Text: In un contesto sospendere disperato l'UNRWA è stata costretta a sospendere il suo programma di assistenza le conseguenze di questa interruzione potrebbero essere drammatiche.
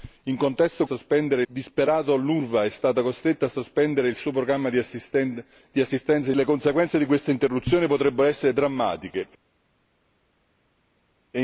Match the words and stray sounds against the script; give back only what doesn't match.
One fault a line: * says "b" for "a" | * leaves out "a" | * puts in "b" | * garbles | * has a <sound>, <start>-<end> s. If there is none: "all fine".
all fine